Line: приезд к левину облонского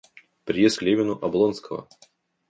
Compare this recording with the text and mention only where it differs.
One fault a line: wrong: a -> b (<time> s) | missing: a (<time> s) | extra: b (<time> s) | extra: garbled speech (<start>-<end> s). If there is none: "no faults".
no faults